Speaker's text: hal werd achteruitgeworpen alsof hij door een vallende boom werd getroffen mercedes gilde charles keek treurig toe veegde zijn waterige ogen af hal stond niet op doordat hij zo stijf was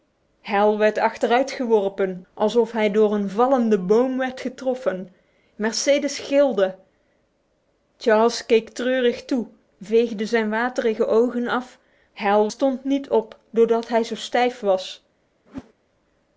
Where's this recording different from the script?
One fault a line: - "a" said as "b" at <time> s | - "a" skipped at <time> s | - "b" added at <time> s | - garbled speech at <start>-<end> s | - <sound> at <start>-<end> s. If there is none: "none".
- whoosh at 15.5-15.7 s